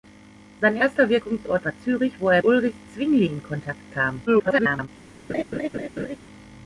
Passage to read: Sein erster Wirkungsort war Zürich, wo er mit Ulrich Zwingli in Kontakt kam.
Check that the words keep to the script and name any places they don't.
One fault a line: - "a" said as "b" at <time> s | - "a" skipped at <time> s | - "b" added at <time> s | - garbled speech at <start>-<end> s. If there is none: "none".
- "mit" skipped at 2.4 s
- garbled speech at 4.3-4.9 s